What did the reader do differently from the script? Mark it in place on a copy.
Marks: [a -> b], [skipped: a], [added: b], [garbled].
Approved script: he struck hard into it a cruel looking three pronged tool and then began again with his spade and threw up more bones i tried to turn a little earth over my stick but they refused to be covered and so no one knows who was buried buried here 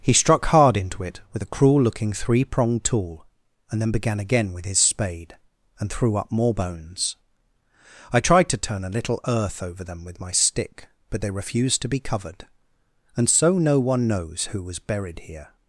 he struck hard into it [added: with] a cruel looking three pronged tool and then began again with his spade and threw up more bones i tried to turn a little earth over [added: them with] my stick but they refused to be covered and so no one knows who was buried [skipped: buried] here